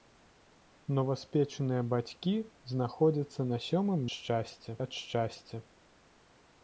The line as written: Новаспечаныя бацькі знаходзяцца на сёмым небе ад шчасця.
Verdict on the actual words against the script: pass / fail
fail